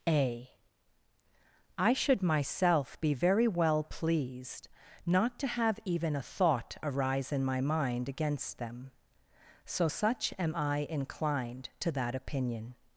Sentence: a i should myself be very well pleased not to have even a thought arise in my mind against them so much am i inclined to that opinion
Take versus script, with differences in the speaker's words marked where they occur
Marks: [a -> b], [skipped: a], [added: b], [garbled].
a i should myself be very well pleased not to have even a thought arise in my mind against them so [much -> such] am i inclined to that opinion